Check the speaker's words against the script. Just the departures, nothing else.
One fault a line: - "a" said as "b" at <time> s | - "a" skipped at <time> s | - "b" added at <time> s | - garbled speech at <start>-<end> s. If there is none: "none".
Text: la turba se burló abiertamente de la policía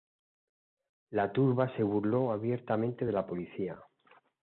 none